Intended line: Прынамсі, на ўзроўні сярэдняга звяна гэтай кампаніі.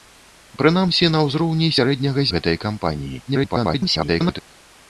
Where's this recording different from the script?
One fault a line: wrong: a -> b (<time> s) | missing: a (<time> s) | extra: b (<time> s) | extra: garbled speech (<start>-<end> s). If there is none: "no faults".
missing: звяна (2.2 s)
extra: garbled speech (3.3-4.4 s)